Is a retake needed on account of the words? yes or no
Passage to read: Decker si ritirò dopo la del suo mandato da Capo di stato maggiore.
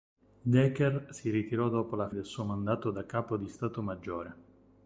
no